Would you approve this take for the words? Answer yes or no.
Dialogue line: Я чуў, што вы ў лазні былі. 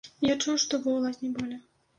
yes